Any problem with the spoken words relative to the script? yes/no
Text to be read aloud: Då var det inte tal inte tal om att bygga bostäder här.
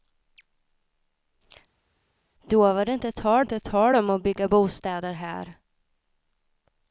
no